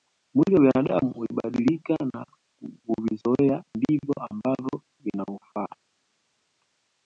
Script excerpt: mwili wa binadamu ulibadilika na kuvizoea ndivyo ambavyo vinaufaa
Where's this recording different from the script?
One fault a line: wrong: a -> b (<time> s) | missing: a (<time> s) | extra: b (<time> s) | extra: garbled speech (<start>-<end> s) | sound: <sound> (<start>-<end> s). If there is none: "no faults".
no faults